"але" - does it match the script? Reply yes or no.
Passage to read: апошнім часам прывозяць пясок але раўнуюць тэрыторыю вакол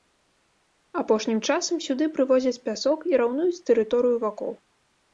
no